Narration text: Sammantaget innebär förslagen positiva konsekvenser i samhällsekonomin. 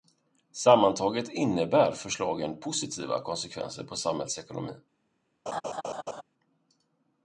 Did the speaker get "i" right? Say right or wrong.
wrong